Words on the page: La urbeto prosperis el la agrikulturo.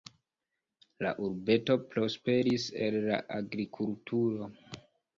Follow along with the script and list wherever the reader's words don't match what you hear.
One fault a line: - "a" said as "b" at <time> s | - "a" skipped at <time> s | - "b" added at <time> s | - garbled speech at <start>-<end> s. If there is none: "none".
none